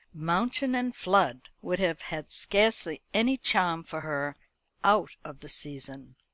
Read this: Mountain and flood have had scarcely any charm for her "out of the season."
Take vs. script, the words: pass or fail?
fail